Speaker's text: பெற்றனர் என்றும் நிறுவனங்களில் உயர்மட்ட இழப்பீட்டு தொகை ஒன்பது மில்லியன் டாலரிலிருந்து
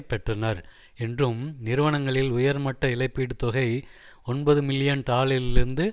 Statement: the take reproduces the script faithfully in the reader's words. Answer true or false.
true